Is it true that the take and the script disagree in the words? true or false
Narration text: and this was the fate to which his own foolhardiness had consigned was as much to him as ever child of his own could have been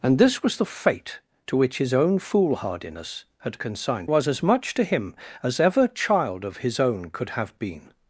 false